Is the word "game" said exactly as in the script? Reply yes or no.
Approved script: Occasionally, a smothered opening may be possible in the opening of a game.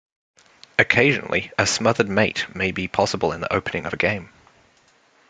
yes